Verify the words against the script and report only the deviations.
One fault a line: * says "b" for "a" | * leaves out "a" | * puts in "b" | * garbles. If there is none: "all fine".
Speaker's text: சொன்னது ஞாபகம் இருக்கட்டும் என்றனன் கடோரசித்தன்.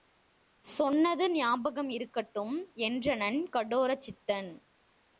all fine